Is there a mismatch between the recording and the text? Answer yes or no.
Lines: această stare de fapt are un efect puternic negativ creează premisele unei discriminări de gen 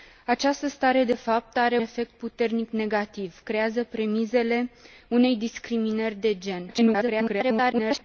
yes